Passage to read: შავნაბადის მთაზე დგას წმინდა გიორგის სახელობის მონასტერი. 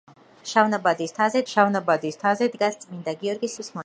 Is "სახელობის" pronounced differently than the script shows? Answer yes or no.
yes